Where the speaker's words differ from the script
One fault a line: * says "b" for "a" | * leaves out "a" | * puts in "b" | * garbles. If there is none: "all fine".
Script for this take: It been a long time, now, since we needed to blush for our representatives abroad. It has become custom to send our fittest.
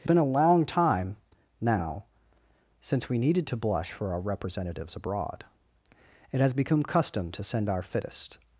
all fine